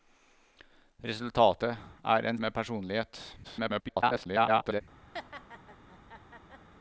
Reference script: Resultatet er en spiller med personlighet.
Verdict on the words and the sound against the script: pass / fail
fail